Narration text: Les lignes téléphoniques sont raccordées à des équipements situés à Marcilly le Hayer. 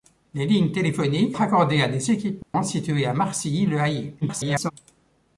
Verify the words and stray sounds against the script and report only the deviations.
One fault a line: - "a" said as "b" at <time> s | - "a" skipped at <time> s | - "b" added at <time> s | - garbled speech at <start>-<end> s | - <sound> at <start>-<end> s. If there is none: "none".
- "sont" skipped at 1.4 s
- dropout at 2.4-2.5 s
- garbled speech at 4.2-4.7 s